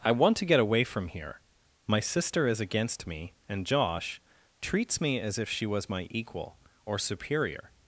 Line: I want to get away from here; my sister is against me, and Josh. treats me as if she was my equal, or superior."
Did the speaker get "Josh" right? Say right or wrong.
right